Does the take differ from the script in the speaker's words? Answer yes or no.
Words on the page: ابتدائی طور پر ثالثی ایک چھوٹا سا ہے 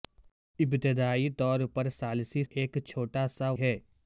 no